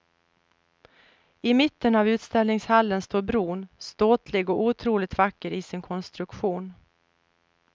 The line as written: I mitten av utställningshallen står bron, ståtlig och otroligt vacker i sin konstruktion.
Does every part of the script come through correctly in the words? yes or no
yes